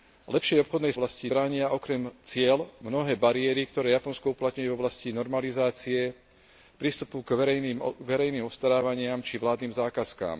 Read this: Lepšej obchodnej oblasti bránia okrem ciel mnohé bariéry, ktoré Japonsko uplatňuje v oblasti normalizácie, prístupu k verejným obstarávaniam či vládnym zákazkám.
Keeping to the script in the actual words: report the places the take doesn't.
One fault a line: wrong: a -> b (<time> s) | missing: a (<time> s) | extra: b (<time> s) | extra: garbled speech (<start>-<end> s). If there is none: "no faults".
no faults